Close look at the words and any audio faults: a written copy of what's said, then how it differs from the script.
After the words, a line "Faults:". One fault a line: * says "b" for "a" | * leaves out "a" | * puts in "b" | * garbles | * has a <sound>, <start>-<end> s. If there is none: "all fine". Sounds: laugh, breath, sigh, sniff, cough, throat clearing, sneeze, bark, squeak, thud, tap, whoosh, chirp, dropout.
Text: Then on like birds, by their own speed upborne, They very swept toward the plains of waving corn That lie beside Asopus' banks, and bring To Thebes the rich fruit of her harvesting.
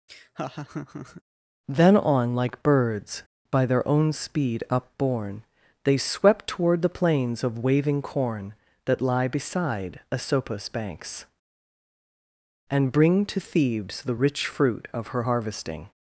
Then on like birds, by their own speed upborne, They swept toward the plains of waving corn That lie beside Asopus' banks, and bring To Thebes the rich fruit of her harvesting.
Faults:
* has a laugh, 0.1-1.2 s
* leaves out "very"